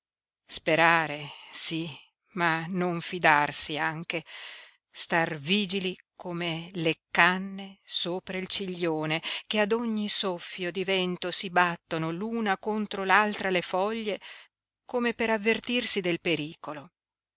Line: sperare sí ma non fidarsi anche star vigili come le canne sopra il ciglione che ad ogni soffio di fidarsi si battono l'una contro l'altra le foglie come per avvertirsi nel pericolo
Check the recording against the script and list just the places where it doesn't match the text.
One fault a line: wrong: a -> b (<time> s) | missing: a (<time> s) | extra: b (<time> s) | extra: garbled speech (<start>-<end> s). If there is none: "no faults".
wrong: fidarsi -> vento (10.8 s)
wrong: nel -> del (16.0 s)